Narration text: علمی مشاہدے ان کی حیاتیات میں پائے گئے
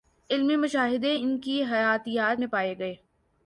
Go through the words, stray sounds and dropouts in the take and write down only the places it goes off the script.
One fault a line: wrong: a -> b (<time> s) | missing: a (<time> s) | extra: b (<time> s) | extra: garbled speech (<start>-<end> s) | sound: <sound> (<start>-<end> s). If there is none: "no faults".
no faults